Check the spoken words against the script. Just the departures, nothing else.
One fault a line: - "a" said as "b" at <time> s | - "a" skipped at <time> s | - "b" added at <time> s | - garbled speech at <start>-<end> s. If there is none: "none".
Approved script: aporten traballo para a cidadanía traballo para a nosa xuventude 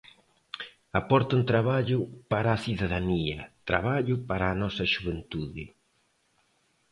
none